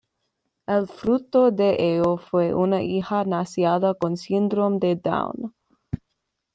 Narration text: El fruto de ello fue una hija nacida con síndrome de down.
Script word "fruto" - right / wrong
right